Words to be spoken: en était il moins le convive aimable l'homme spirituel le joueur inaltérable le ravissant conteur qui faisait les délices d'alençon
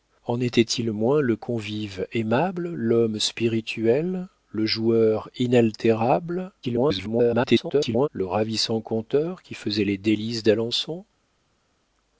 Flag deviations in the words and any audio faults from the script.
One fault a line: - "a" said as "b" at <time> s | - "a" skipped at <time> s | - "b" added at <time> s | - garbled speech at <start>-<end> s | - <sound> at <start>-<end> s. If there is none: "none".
- garbled speech at 6.6-8.1 s